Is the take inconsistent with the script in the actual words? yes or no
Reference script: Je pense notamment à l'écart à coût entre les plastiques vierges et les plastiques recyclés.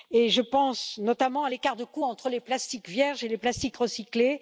yes